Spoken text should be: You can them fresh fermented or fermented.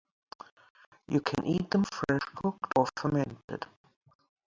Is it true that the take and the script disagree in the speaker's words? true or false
true